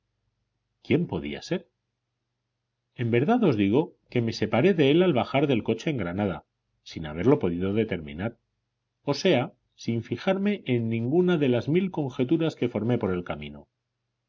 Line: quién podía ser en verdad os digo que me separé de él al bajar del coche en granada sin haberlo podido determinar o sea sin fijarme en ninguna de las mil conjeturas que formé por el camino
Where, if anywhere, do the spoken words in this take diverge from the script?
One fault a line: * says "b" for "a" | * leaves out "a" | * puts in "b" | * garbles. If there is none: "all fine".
all fine